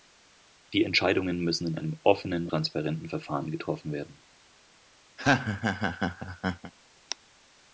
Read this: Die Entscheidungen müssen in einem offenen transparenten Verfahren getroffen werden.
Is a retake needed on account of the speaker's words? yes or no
no